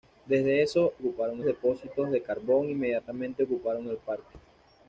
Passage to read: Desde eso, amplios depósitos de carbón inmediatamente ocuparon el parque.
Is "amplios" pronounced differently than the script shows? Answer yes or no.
yes